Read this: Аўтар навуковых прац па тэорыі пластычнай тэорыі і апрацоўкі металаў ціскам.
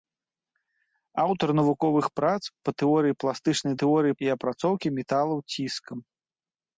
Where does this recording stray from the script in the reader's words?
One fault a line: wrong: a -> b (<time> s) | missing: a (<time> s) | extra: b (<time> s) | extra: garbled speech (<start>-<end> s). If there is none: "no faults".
no faults